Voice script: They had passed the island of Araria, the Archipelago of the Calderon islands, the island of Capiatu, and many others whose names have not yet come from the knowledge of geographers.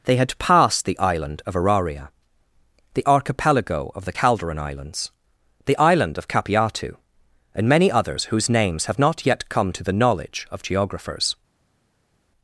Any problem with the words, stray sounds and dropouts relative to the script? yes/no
yes